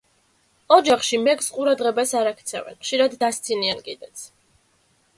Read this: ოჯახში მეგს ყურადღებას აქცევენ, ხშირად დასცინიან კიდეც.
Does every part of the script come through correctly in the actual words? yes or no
no